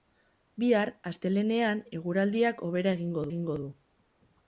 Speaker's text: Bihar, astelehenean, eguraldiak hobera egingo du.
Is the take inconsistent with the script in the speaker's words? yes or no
yes